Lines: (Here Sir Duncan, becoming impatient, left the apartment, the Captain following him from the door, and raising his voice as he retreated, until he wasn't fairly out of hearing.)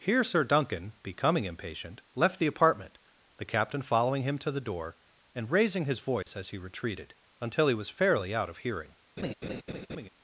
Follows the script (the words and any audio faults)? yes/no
no